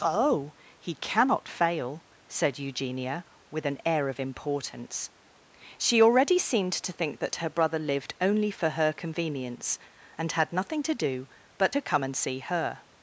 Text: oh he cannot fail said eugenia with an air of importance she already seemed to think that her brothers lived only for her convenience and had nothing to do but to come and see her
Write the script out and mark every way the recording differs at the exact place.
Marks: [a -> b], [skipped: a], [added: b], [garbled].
oh he cannot fail said eugenia with an air of importance she already seemed to think that her [brothers -> brother] lived only for her convenience and had nothing to do but to come and see her